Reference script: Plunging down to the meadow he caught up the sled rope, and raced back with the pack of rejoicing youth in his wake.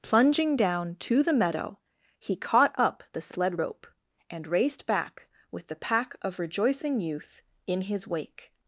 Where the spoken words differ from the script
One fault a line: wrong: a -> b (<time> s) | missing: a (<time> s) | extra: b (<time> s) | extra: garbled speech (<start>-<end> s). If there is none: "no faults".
no faults